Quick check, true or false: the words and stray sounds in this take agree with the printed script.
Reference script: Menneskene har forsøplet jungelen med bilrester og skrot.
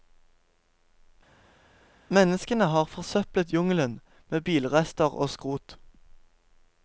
true